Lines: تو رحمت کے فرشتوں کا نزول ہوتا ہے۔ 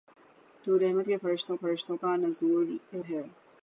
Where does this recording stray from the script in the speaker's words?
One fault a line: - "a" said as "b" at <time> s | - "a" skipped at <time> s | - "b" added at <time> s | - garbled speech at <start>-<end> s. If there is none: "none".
- "فرشتوں" added at 1.6 s
- "ہوتا" skipped at 2.8 s